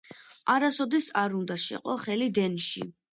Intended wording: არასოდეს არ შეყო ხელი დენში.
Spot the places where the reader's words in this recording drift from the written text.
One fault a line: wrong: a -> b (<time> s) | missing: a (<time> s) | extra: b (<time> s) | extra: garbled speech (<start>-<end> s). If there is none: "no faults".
extra: უნდა (1.4 s)